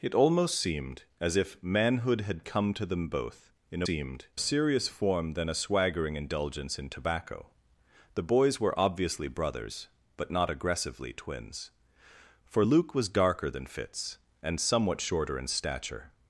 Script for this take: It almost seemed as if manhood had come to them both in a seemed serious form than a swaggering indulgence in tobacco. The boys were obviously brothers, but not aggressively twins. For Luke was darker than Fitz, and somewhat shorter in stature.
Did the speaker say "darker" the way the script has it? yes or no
yes